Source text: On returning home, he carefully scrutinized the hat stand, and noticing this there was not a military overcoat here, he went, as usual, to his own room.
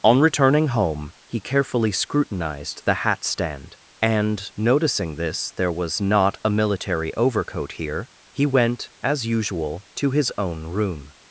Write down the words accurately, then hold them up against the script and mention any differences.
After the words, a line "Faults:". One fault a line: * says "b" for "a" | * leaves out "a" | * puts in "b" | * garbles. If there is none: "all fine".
On returning home, he carefully scrutinized the hat stand, and noticing this there was not a military overcoat here, he went, as usual, to his own room.
Faults:
all fine